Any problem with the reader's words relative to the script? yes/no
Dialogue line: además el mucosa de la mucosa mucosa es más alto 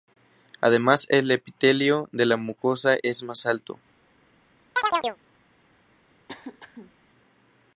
yes